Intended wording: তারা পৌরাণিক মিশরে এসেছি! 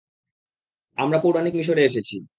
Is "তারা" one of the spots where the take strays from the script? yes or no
yes